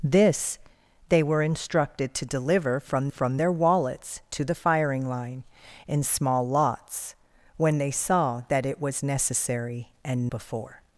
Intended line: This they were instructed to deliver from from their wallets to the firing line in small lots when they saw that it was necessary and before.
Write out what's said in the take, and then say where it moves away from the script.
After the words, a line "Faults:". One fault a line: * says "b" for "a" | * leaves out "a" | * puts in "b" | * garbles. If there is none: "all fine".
This they were instructed to deliver from from their wallets to the firing line in small lots when they saw that it was necessary and before.
Faults:
all fine